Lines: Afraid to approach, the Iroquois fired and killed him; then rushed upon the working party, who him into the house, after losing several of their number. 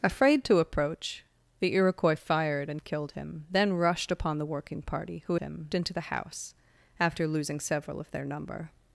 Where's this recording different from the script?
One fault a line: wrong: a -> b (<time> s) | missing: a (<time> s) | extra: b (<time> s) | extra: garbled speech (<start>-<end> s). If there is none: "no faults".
no faults